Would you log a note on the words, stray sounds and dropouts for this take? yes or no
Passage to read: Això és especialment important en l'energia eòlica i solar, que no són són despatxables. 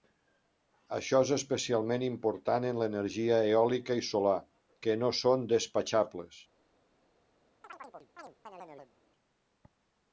yes